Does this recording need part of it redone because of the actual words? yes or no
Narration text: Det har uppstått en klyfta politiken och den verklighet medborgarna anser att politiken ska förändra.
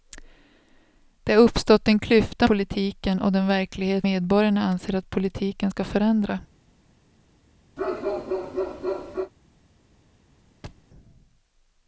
no